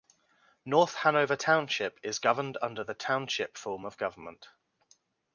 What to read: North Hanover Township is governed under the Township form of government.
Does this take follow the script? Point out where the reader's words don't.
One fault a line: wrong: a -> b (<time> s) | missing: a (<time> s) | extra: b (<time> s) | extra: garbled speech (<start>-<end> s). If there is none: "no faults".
no faults